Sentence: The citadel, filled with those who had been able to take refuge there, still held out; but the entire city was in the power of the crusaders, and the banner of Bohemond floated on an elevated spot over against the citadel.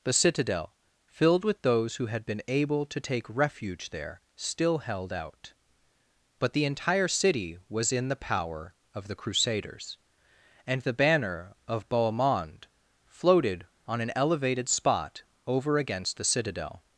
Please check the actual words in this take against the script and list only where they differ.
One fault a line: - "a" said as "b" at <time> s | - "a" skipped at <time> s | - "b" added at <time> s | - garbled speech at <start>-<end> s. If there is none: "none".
none